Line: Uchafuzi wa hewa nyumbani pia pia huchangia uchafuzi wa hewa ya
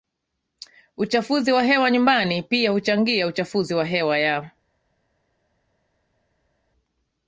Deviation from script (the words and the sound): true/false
true